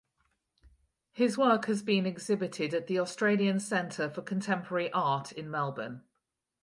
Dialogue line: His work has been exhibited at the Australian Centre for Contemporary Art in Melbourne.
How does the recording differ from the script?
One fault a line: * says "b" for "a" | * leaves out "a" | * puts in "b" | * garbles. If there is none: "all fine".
all fine